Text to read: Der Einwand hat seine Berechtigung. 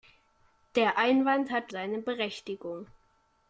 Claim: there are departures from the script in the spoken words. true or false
false